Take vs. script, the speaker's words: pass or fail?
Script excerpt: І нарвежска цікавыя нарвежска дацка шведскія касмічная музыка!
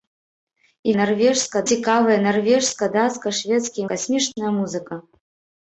pass